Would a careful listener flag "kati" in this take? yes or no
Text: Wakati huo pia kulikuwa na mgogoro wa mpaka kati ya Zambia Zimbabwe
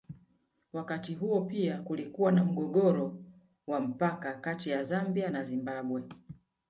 no